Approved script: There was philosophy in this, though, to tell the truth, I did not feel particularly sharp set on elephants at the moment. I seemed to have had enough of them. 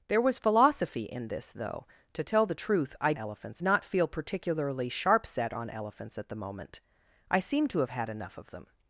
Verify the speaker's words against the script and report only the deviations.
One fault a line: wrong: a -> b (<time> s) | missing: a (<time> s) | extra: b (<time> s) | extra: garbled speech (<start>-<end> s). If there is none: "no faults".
wrong: did -> elephants (3.1 s)